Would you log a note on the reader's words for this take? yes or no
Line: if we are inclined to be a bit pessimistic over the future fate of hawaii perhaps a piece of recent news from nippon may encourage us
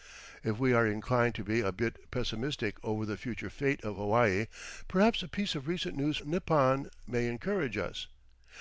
yes